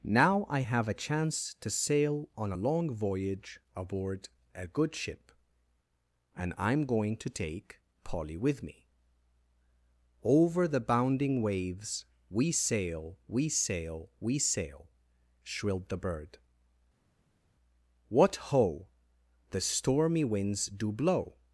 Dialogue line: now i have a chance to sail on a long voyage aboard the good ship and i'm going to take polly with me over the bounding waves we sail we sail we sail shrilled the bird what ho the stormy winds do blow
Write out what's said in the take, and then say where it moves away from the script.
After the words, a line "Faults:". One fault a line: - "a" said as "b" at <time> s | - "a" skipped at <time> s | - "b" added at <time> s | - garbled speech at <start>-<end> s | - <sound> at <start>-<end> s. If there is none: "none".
now i have a chance to sail on a long voyage aboard a good ship and i'm going to take polly with me over the bounding waves we sail we sail we sail shrilled the bird what ho the stormy winds do blow
Faults:
- "the" said as "a" at 4.5 s